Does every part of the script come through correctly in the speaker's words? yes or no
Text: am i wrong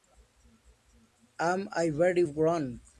no